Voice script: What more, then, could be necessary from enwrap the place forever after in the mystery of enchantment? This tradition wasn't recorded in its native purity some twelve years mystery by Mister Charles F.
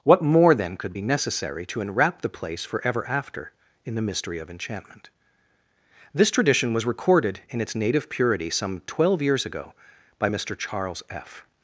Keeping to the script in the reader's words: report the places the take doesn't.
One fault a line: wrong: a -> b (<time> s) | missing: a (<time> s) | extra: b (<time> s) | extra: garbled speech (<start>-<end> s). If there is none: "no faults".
wrong: from -> to (1.6 s)
wrong: wasn't -> was (6.7 s)
wrong: mystery -> ago (9.5 s)